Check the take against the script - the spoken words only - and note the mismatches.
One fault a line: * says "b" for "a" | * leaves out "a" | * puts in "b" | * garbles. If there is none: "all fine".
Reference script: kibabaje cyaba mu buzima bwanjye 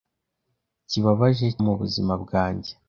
* leaves out "cyaba"